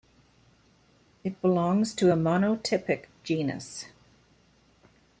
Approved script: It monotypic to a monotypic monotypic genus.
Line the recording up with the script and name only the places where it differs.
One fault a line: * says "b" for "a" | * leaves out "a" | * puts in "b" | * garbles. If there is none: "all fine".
* says "belongs" for "monotypic"
* leaves out "monotypic"